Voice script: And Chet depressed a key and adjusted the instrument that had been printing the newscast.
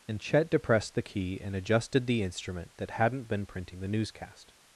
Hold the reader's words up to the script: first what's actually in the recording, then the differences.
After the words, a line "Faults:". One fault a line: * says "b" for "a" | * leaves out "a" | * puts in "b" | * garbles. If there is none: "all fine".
And Chet depressed the key and adjusted the instrument that hadn't been printing the newscast.
Faults:
* says "the" for "a"
* says "hadn't" for "had"